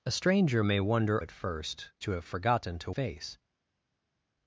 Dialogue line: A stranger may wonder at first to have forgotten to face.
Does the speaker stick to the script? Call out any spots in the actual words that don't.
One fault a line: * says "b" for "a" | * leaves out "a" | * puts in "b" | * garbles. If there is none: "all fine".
all fine